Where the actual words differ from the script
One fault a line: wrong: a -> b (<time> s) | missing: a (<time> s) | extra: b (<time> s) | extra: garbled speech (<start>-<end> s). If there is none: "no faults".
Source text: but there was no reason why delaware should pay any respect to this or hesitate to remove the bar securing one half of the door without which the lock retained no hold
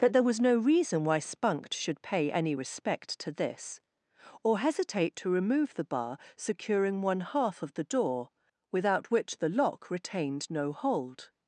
wrong: delaware -> spunked (1.2 s)